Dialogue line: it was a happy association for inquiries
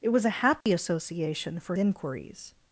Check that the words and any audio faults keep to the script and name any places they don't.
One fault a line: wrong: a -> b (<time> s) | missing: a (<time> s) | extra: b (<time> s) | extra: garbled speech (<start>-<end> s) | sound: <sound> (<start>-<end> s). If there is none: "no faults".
sound: dropout (0.6-0.7 s)